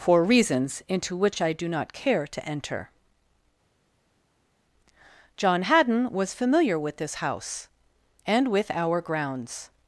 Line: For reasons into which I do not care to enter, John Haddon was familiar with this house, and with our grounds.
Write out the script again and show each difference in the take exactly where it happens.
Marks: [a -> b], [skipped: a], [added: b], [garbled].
For reasons into which I do not care to enter, John Haddon was familiar with this house, and with our grounds.